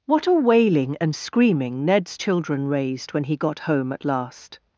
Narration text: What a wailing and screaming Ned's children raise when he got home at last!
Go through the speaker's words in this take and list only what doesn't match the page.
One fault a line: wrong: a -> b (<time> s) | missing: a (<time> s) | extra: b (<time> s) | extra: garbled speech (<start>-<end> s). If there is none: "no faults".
wrong: raise -> raised (2.7 s)